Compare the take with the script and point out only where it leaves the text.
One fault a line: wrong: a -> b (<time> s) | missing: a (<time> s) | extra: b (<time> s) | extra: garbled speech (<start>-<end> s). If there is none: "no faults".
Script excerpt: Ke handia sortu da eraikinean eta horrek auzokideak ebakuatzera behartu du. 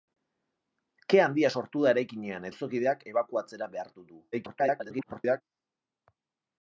missing: eta horrek (2.5 s)
extra: garbled speech (4.3-5.4 s)